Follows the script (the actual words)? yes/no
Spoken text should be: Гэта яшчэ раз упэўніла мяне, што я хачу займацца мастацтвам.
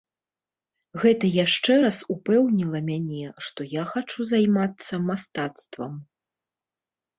yes